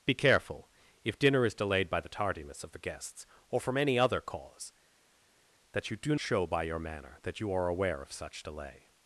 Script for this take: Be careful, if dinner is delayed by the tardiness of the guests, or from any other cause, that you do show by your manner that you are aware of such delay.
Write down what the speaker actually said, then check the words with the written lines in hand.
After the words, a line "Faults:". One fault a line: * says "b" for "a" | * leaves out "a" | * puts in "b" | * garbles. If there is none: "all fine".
Be careful, if dinner is delayed by the tardiness of the guests, or from any other cause, that you do show by your manner that you are aware of such delay.
Faults:
all fine